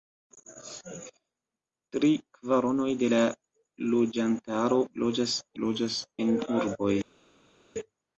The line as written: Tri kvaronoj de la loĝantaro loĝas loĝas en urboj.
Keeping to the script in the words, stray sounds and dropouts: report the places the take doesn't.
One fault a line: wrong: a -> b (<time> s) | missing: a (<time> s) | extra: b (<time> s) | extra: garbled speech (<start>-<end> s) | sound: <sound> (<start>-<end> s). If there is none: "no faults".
no faults